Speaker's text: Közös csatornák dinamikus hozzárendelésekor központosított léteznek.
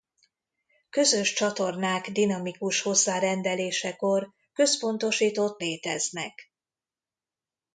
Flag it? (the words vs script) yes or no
no